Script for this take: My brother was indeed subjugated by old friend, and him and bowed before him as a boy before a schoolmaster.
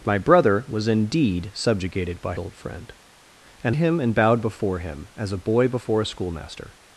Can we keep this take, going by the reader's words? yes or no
yes